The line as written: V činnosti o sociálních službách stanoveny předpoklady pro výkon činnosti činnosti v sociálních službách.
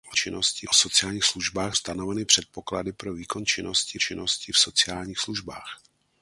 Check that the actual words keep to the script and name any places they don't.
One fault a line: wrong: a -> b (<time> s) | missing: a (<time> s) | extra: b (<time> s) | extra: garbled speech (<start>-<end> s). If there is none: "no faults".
no faults